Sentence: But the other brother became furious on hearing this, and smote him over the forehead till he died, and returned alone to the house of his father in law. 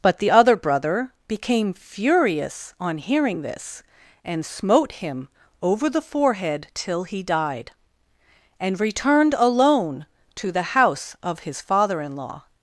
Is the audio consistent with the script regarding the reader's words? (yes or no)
yes